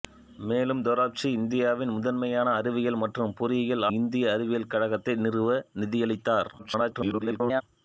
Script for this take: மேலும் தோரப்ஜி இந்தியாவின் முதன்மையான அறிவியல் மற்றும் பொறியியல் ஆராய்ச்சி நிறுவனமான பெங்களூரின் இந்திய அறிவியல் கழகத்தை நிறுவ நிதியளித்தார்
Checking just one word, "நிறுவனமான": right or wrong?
wrong